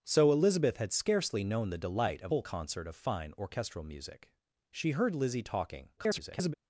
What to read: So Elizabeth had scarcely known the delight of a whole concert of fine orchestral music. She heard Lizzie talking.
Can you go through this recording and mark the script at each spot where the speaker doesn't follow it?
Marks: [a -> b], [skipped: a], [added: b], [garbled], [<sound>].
So Elizabeth had scarcely known the delight of [skipped: a] whole concert of fine orchestral music. She heard Lizzie talking. [garbled]